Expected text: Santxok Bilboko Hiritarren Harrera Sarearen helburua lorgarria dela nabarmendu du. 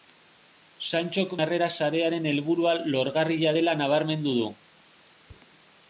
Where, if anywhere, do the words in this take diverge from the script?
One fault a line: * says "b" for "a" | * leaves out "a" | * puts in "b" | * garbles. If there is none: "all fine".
* leaves out "Bilboko Hiritarren"